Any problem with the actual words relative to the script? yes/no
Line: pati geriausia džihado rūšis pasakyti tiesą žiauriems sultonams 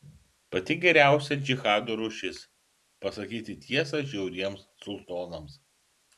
no